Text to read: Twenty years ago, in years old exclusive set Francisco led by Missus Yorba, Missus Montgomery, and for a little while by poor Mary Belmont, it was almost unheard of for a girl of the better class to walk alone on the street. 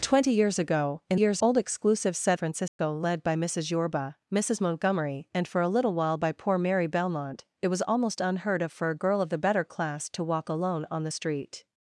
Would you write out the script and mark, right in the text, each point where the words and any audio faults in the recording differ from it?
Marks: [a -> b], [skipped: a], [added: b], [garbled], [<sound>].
Twenty years ago, in years old exclusive set Francisco [dropout] led by Missus Yorba, Missus Montgomery, and for a little while by poor Mary Belmont, it was almost unheard of for a girl of the better class to walk alone on the street.